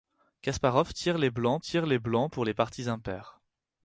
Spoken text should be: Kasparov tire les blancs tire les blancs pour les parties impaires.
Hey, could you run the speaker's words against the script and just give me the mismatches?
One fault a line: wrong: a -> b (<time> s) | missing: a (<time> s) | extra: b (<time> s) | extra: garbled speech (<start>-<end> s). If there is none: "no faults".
no faults